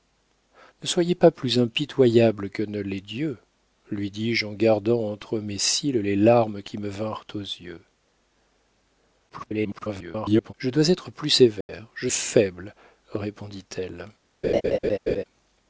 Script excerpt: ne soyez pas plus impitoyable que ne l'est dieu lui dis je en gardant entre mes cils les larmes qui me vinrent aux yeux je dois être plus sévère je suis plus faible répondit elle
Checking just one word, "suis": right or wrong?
wrong